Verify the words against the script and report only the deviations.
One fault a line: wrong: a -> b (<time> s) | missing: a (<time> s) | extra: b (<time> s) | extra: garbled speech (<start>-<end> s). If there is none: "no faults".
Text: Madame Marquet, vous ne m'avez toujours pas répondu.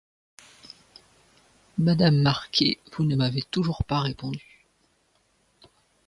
no faults